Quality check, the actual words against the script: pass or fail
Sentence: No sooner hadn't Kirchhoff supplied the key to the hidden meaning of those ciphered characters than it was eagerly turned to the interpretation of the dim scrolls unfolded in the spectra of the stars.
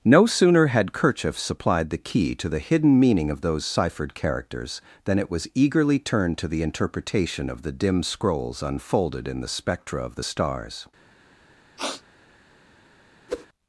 fail